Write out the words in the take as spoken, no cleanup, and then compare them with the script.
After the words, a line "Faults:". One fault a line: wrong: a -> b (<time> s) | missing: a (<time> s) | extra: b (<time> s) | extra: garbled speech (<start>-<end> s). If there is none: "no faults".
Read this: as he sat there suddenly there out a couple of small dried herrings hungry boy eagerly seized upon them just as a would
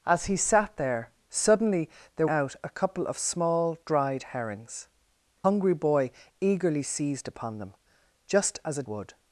as he sat there suddenly there out a couple of small dried herrings hungry boy eagerly seized upon them just as a would
Faults:
no faults